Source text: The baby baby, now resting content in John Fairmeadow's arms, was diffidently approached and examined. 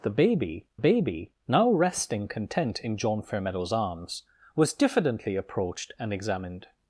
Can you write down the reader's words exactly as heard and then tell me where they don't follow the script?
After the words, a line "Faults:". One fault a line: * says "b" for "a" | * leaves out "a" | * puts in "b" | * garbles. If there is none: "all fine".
The baby baby, now resting content in John Fairmeadow's arms, was diffidently approached and examined.
Faults:
all fine